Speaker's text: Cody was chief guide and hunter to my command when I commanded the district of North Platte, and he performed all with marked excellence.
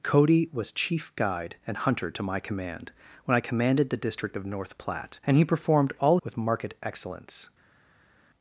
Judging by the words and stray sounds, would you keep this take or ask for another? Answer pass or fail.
pass